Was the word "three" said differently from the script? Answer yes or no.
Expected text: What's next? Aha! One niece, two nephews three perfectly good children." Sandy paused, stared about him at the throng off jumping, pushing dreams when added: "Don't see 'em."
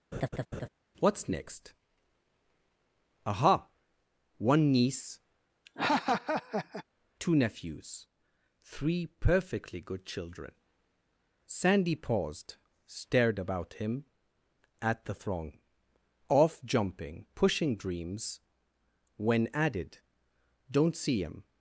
no